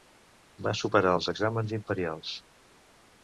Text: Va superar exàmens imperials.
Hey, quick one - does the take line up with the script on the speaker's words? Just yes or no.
no